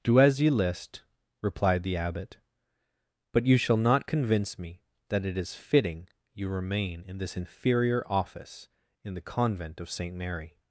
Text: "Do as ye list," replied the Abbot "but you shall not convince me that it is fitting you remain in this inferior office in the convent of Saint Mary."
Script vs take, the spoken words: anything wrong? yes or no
no